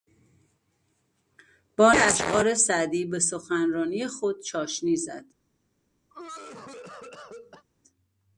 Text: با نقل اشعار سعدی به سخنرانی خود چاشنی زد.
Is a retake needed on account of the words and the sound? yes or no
yes